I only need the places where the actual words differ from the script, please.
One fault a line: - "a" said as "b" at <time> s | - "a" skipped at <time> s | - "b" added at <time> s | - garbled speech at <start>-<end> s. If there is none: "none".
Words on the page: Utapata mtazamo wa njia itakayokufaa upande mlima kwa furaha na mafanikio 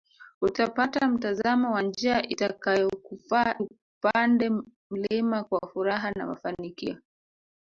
none